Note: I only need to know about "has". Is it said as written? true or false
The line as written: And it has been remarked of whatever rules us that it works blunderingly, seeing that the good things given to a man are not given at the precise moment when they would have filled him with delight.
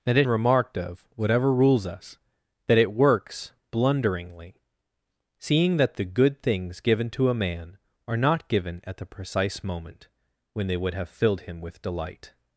false